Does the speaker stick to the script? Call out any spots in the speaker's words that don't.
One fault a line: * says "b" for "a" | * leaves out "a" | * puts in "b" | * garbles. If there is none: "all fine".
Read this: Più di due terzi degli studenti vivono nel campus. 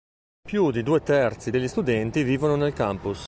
all fine